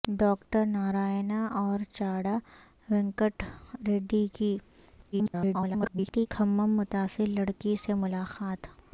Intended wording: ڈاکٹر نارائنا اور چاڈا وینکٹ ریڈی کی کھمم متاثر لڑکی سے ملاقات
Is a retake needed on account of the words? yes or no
yes